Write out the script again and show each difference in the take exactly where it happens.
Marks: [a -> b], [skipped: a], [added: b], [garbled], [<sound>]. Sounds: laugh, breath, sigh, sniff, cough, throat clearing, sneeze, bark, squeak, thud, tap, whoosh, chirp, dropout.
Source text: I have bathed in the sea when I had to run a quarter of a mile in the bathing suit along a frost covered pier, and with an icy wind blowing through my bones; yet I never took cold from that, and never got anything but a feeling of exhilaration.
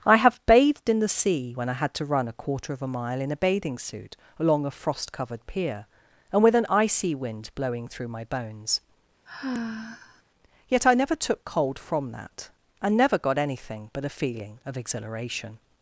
I have bathed in the sea when I had to run a quarter of a mile in [the -> a] bathing suit along a frost covered pier, and with an icy wind blowing through my bones; [sigh] yet I never took cold from that, and never got anything but a feeling of exhilaration.